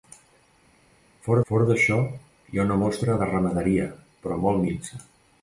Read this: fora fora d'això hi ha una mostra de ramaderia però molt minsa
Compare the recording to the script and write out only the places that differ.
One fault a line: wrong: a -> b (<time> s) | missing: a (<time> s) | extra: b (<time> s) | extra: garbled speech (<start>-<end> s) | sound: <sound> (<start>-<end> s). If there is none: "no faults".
no faults